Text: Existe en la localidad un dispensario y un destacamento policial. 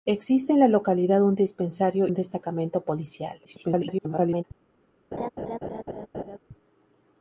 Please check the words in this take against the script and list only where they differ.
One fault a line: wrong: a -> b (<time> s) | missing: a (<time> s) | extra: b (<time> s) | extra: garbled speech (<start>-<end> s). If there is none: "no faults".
missing: y (2.1 s)
extra: garbled speech (3.4-4.4 s)